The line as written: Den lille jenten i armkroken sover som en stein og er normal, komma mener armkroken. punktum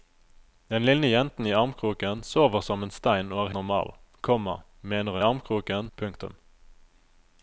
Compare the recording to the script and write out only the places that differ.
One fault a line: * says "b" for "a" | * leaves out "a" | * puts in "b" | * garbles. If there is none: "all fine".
all fine